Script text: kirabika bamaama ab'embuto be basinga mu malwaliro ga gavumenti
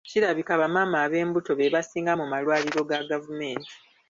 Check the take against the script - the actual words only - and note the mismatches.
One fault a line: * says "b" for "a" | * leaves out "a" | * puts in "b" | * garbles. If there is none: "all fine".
all fine